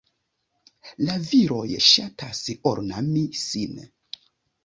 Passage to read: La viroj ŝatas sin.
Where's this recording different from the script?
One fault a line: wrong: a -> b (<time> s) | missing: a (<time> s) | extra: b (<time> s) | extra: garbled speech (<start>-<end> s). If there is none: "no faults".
extra: ornami (2.7 s)